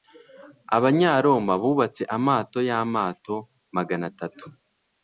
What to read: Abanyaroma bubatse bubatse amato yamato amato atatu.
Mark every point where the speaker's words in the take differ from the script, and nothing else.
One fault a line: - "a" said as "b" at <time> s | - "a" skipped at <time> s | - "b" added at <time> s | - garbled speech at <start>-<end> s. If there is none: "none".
- "bubatse" skipped at 2.0 s
- "amato" said as "magana" at 3.8 s